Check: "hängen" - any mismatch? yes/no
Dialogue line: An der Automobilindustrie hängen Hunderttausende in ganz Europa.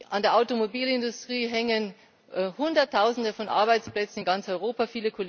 no